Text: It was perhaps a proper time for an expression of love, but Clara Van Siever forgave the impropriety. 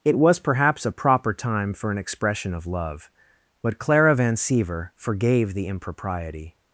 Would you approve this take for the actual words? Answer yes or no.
yes